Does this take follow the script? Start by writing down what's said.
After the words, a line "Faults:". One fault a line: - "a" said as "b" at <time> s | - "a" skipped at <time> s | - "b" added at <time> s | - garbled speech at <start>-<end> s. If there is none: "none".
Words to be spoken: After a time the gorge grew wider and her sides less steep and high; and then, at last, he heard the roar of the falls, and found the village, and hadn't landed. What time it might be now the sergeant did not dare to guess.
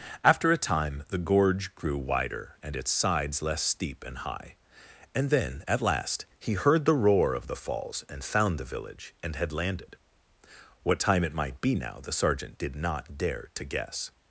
After a time the gorge grew wider and its sides less steep and high; and then, at last, he heard the roar of the falls, and found the village, and had landed. What time it might be now the sergeant did not dare to guess.
Faults:
- "her" said as "its" at 2.8 s
- "hadn't" said as "had" at 9.3 s